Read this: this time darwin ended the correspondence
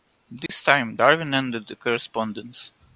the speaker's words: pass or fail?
pass